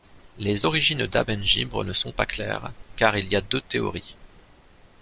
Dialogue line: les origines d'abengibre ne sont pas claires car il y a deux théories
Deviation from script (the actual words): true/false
false